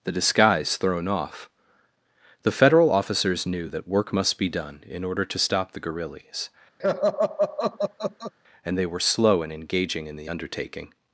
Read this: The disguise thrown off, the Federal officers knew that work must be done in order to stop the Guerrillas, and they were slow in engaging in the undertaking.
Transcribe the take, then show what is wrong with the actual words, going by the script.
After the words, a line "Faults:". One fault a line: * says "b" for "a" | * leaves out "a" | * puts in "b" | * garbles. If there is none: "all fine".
The disguise thrown off, the Federal officers knew that work must be done in order to stop the Guerrillas, and they were slow in engaging in the undertaking.
Faults:
all fine